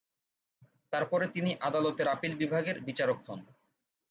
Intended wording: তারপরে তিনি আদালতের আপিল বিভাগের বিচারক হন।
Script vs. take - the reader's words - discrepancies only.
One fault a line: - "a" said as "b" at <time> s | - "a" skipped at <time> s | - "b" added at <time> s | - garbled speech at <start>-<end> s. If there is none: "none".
none